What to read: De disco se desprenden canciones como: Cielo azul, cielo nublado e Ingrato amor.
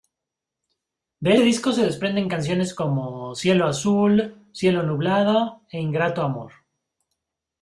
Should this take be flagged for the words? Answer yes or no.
no